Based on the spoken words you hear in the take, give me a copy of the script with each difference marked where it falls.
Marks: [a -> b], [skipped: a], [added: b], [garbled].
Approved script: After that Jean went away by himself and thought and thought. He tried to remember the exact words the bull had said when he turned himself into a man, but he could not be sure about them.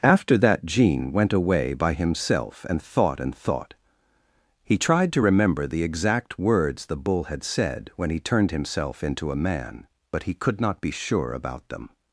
After that Jean went away by himself and thought and thought. He tried to remember the exact words the bull had said when he turned himself into a man, but he could not be sure about them.